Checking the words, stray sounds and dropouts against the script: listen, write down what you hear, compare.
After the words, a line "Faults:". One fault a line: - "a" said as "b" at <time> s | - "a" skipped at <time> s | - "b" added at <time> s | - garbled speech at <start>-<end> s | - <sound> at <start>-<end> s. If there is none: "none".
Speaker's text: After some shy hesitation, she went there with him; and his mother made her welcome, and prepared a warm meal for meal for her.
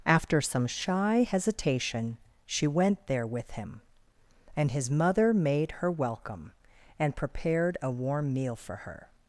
After some shy hesitation, she went there with him; and his mother made her welcome, and prepared a warm meal for her.
Faults:
- "meal for" skipped at 8.8 s